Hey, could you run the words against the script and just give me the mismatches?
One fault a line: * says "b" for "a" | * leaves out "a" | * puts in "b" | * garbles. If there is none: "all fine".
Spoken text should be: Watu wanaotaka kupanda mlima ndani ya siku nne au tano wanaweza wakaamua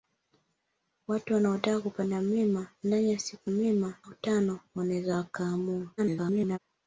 * says "mlima" for "nne"
* garbles